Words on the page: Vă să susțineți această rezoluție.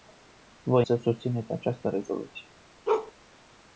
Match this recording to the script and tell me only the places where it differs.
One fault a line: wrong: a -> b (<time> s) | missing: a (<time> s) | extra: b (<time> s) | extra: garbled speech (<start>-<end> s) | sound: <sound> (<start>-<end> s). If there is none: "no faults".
sound: bark (2.9-3.1 s)